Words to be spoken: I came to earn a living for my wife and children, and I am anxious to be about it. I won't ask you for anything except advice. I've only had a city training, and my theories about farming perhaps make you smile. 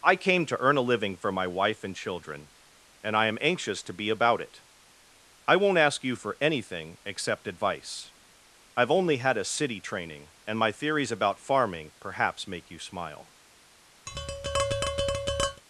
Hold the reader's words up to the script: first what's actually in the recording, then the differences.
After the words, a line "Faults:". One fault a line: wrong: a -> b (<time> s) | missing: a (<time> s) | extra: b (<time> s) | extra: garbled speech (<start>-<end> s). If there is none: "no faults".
I came to earn a living for my wife and children, and I am anxious to be about it. I won't ask you for anything except advice. I've only had a city training, and my theories about farming perhaps make you smile.
Faults:
no faults